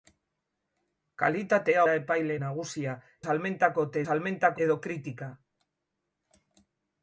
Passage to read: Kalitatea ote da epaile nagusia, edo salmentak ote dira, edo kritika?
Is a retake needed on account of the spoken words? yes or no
yes